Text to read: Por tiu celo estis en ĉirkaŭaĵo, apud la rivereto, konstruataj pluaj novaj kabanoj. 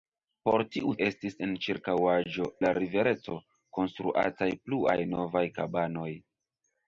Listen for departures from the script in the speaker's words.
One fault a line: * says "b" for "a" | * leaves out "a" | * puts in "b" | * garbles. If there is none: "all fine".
* leaves out "celo"
* leaves out "apud"